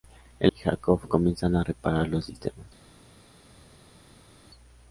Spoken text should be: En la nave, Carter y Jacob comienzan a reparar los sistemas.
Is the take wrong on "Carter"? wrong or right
wrong